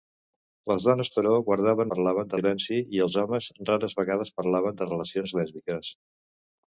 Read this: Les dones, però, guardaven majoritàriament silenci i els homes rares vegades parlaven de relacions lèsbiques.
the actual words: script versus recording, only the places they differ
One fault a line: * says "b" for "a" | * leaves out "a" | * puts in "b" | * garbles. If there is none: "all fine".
* says "parlaven" for "majoritàriament"